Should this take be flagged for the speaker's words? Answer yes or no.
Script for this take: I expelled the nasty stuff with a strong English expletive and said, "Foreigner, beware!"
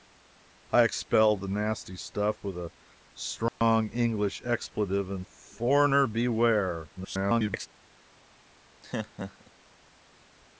yes